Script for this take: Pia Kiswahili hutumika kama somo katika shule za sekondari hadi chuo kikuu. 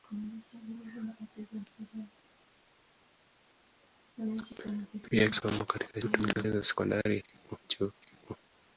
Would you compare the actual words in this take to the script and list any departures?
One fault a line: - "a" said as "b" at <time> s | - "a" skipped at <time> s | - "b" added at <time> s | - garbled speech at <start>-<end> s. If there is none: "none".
- "Kiswahili hutumika kama" skipped at 5.3 s
- "shule" said as "hutumika" at 6.0 s
- "hadi" said as "kikuu" at 7.2 s